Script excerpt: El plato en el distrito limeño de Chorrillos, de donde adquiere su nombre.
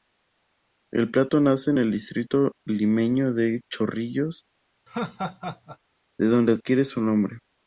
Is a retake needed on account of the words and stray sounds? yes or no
yes